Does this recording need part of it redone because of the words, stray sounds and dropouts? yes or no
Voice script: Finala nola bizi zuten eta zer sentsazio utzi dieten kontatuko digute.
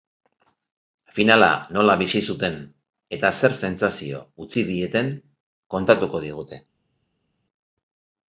no